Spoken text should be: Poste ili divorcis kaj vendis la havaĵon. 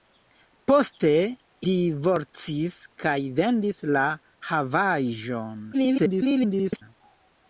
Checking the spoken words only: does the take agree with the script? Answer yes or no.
no